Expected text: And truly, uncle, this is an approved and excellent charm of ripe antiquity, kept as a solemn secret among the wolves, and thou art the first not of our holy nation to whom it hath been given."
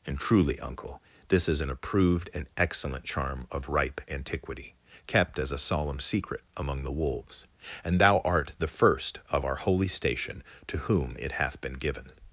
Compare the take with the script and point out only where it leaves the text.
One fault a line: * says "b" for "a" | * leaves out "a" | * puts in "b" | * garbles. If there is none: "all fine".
* leaves out "not"
* says "station" for "nation"